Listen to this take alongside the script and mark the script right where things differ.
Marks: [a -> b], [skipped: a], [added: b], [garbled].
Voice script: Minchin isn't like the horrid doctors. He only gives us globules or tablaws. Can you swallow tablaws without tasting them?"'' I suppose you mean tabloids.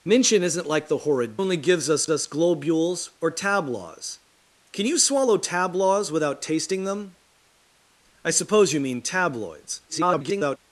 Minchin isn't like the horrid [skipped: doctors. He] only gives us [added: us] globules or tablaws. Can you swallow tablaws without tasting them?"'' I suppose you mean tabloids. [garbled]